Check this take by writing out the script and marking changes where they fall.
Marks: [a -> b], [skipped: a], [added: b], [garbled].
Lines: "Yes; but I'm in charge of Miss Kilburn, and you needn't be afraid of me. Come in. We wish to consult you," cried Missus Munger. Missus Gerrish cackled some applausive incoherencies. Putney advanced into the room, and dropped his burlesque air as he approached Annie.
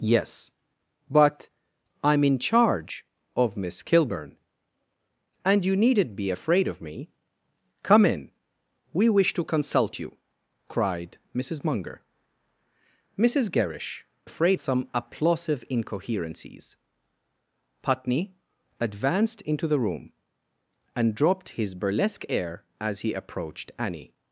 "Yes; but I'm in charge of Miss Kilburn, and you needn't be afraid of me. Come in. We wish to consult you," cried Missus Munger. Missus Gerrish [cackled -> afraid] some applausive incoherencies. Putney advanced into the room, and dropped his burlesque air as he approached Annie.